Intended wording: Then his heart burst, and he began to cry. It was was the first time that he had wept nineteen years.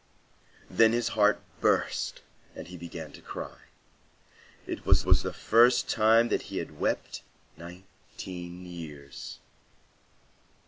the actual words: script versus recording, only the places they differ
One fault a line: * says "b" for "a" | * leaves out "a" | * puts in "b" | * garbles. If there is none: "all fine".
all fine